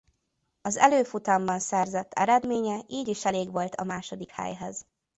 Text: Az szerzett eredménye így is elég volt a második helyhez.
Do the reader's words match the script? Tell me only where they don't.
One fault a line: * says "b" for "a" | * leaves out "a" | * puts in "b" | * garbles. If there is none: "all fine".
* puts in "előfutamban"